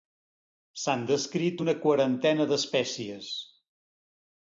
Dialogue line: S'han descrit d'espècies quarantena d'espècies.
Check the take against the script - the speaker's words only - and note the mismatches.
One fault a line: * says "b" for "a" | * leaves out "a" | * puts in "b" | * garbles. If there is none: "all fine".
* says "una" for "d'espècies"